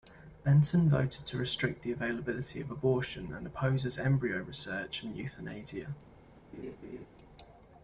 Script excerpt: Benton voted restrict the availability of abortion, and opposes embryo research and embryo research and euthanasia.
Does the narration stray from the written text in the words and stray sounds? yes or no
yes